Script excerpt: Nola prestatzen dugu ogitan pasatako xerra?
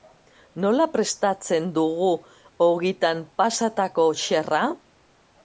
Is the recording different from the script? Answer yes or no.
no